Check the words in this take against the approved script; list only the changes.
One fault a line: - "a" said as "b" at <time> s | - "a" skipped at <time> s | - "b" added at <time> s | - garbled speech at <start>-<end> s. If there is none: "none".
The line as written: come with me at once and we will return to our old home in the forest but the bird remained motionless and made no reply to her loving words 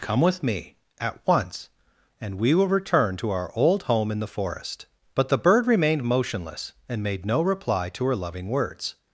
none